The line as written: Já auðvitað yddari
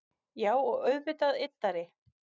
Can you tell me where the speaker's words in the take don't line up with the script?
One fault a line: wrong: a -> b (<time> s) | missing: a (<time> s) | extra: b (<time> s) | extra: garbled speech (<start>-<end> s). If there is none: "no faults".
extra: og (0.6 s)